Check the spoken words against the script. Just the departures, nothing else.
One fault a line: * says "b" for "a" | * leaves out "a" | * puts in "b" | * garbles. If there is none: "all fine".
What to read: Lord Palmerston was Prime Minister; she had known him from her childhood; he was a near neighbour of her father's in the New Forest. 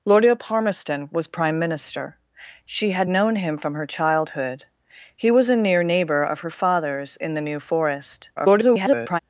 * garbles